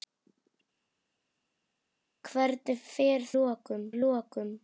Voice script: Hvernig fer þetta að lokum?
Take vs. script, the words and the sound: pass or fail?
fail